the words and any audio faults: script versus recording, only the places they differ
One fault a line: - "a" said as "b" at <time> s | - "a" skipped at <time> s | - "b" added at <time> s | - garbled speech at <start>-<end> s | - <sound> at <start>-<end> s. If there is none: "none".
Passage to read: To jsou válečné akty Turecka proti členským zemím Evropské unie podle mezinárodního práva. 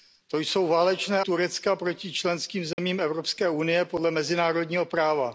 - "akty" skipped at 1.2 s
- dropout at 2.7-2.8 s